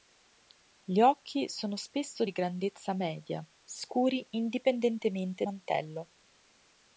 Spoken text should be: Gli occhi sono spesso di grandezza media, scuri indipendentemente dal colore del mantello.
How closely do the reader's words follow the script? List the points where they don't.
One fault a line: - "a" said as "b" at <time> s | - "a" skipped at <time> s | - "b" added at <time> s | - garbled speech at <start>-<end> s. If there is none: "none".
- "dal colore del" skipped at 5.4 s